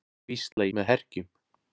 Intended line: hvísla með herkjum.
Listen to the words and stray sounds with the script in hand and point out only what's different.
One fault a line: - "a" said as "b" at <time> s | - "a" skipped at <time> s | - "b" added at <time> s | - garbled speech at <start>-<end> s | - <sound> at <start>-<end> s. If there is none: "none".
- dropout at 0.5-0.6 s